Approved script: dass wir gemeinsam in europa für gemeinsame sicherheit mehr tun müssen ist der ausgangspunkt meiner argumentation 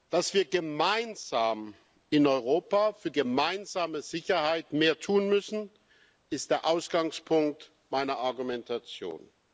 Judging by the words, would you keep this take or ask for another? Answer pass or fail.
pass